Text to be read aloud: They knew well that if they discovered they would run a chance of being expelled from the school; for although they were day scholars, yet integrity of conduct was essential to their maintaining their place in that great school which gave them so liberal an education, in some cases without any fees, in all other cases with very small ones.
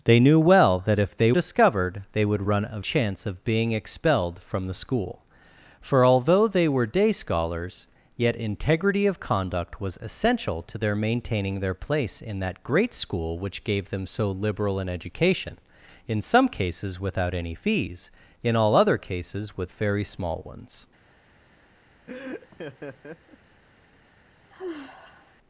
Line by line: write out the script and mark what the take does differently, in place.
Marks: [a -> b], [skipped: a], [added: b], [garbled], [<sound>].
They knew well that if they discovered they would run a chance of being expelled from the school; for although they were day scholars, yet integrity of conduct was essential to their maintaining their place in that great school which gave them so liberal an education, in some cases without any fees, in all other cases with very small ones. [laugh] [sigh]